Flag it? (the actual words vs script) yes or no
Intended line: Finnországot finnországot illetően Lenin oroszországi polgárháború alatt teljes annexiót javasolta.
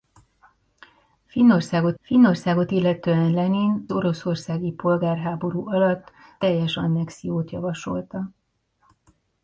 no